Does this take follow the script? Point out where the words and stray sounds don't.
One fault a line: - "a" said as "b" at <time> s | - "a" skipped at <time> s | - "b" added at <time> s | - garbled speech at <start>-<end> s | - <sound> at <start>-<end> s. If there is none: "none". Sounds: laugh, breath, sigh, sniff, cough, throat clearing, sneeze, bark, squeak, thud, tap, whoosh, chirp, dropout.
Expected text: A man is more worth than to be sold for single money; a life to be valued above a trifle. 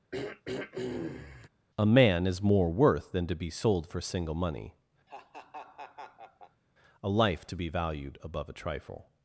- throat clearing at 0.1-1.5 s
- laugh at 5.1-6.6 s